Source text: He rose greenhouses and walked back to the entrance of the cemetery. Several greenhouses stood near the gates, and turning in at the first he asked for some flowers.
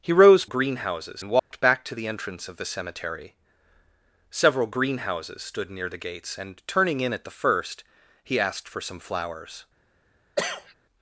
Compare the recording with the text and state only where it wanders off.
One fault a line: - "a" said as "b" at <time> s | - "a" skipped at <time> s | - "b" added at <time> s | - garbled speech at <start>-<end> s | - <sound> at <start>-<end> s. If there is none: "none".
- dropout at 1.4-1.5 s
- cough at 10.4-10.7 s